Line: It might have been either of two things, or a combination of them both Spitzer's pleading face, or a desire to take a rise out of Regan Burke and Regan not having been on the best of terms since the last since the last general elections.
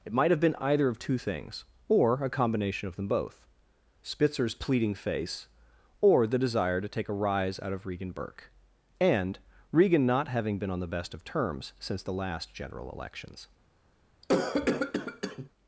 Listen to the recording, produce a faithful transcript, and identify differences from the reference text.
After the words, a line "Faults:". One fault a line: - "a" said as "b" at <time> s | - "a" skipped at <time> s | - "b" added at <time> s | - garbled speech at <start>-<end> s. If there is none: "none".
It might have been either of two things, or a combination of them both Spitzer's pleading face, or the desire to take a rise out of Regan Burke and Regan not having been on the best of terms since the last general elections.
Faults:
- "a" said as "the" at 6.3 s
- "since the last" skipped at 12.5 s